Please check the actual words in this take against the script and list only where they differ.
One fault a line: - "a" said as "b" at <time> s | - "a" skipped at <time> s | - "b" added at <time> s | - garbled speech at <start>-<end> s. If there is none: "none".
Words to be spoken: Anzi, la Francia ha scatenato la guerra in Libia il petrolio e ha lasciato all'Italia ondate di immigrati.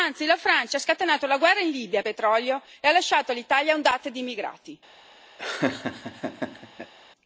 none